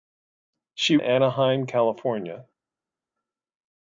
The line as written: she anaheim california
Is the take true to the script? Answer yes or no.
yes